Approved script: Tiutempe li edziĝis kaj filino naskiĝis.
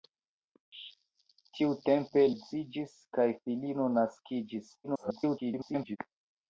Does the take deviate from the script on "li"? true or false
true